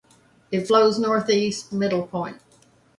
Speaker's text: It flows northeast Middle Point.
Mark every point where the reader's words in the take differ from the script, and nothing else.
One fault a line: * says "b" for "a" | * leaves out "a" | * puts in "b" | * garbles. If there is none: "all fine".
all fine